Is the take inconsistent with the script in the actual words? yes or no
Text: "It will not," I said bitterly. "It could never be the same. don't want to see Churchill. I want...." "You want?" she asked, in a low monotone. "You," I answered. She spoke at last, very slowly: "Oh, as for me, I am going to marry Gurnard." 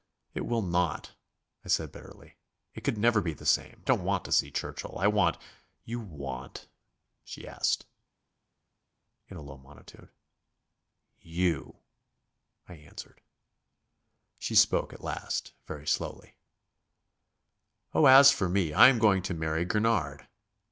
no